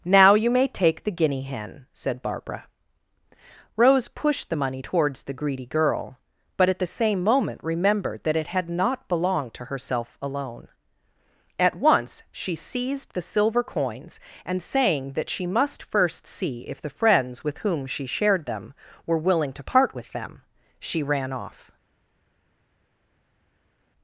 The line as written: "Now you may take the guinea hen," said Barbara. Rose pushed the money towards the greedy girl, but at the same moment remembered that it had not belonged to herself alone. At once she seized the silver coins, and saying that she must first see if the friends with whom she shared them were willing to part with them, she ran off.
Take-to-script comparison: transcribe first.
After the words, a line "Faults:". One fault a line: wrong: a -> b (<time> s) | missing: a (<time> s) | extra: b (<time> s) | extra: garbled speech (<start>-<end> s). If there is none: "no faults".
"Now you may take the guinea hen," said Barbara. Rose pushed the money towards the greedy girl, but at the same moment remembered that it had not belonged to herself alone. At once she seized the silver coins, and saying that she must first see if the friends with whom she shared them were willing to part with them, she ran off.
Faults:
no faults